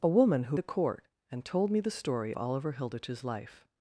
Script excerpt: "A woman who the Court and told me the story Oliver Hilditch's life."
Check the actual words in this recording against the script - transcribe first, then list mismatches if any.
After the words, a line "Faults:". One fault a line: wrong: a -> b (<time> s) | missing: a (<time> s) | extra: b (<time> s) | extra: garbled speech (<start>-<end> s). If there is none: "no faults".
"A woman who the Court and told me the story Oliver Hilditch's life."
Faults:
no faults